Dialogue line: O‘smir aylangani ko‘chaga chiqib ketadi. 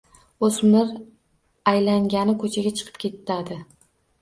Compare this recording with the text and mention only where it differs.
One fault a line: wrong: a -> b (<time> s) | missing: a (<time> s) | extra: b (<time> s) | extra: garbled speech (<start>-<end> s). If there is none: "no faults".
no faults